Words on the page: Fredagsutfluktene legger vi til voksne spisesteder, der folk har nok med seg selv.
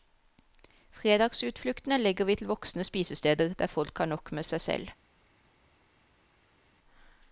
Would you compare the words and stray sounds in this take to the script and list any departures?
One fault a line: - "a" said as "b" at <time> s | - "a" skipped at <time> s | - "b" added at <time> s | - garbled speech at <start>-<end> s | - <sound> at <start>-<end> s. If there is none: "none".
none